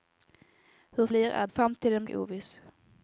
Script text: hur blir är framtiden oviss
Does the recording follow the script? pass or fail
pass